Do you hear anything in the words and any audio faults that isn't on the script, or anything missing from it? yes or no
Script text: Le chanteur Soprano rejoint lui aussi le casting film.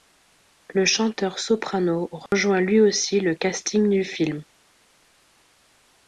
yes